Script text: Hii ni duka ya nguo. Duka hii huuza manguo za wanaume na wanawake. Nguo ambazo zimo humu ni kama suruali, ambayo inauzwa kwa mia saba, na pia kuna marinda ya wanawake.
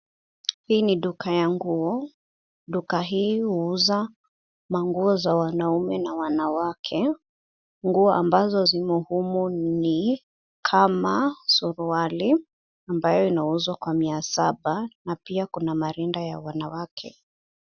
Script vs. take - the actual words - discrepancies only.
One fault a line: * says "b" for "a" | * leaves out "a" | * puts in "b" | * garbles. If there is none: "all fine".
all fine